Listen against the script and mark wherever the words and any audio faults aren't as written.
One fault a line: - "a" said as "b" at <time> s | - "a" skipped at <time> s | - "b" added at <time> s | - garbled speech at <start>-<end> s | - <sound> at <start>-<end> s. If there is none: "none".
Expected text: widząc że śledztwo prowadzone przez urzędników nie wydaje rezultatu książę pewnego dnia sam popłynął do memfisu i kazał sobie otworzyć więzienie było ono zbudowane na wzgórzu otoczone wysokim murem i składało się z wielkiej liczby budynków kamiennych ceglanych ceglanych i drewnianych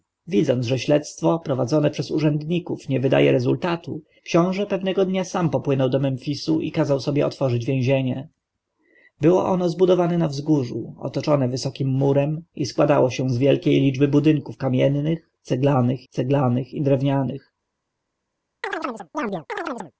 - chirp at 18.6-19.9 s